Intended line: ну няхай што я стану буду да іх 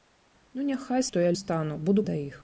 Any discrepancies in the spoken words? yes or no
no